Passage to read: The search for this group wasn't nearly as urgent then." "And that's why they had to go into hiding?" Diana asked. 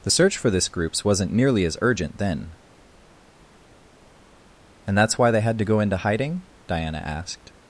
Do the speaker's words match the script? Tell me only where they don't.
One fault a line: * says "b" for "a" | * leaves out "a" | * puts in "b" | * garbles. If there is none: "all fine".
* says "groups" for "group"